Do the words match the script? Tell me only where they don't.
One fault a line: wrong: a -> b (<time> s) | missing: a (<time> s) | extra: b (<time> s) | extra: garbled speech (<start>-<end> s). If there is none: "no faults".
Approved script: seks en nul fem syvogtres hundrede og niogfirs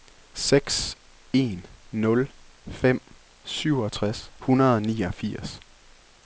no faults